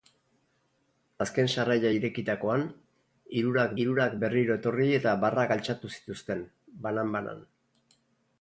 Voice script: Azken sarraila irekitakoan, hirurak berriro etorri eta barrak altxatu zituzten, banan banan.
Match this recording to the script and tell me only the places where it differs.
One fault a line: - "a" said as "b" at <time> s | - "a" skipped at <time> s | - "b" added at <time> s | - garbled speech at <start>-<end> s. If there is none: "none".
- "hirurak" added at 3.8 s